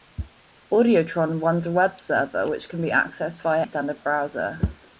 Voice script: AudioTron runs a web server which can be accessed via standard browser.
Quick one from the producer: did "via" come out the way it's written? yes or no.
yes